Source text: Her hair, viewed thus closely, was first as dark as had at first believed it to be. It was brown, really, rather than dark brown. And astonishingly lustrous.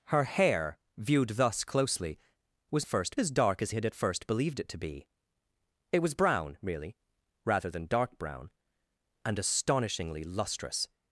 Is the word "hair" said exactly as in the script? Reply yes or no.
yes